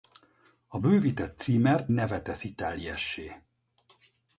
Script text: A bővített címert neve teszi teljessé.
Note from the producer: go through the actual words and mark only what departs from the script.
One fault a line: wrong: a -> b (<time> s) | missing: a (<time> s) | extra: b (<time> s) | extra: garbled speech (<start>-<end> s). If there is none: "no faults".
no faults